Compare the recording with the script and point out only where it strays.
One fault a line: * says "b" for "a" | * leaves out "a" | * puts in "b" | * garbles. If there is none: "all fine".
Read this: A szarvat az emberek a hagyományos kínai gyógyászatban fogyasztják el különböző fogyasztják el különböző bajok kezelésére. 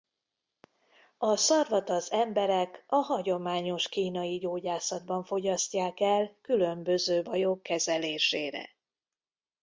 * leaves out "fogyasztják el különböző"